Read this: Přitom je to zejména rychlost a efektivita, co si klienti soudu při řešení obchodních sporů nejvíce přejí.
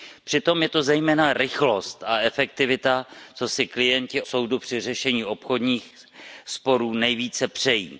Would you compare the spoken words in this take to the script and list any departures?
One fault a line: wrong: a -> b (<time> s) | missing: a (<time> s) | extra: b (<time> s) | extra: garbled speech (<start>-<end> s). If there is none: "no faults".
no faults